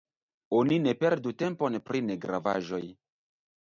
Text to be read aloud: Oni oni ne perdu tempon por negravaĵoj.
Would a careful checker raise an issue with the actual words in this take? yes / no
yes